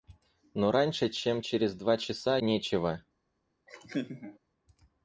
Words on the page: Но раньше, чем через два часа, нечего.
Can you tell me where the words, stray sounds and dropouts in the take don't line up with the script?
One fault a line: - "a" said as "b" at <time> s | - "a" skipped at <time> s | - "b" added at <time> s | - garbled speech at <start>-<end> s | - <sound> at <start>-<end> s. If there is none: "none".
- laugh at 3.7-4.4 s